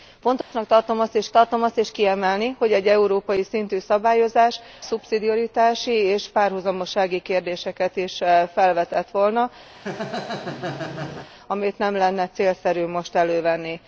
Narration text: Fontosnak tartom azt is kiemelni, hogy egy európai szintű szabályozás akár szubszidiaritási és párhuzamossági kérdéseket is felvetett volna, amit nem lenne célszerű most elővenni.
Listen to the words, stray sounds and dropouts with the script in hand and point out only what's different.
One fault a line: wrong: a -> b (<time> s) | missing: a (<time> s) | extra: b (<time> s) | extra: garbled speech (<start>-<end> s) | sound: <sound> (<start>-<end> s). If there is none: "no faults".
sound: dropout (0.4-0.5 s)
extra: tartom azt is (1.3 s)
missing: akár (4.6 s)
sound: laugh (9.7-11.3 s)